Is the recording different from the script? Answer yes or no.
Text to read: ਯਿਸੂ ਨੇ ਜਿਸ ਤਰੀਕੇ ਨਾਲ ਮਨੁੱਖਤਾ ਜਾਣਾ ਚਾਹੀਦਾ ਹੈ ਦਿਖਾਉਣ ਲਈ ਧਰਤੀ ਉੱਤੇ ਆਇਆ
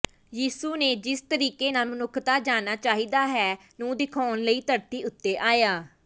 yes